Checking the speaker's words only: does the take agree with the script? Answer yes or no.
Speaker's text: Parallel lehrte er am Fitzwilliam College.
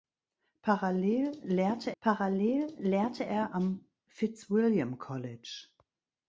no